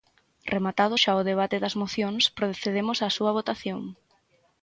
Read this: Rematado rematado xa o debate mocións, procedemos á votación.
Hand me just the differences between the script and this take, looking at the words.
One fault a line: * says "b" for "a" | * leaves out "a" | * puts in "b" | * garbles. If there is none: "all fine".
* leaves out "rematado"
* puts in "das"
* puts in "súa"